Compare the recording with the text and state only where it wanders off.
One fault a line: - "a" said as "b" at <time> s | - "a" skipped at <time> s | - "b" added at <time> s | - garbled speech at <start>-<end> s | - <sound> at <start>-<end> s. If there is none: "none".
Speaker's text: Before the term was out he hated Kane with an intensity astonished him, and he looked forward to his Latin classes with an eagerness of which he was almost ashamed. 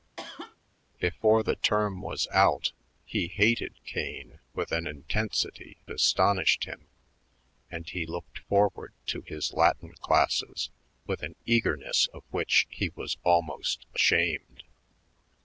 - cough at 0.2-0.6 s